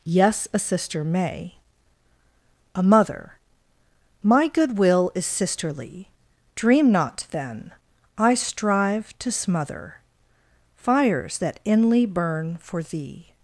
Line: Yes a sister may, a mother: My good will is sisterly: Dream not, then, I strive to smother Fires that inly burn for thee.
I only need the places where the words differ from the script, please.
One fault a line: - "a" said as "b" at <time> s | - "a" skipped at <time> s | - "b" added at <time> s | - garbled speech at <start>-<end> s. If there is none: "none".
none